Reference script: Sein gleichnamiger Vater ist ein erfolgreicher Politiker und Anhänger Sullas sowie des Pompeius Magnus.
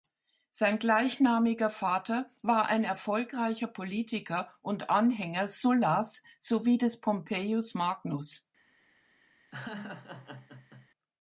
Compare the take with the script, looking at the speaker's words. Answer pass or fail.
fail